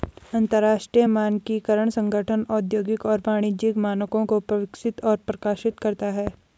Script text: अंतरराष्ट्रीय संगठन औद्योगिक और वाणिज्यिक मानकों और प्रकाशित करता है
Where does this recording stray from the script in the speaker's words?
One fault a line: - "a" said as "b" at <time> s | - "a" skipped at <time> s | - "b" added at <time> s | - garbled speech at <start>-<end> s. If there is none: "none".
- "मानकीकरण" added at 1.0 s
- "को विकसित" added at 4.3 s